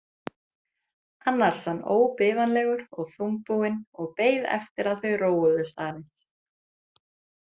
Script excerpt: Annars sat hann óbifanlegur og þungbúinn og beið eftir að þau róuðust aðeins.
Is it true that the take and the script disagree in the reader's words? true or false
true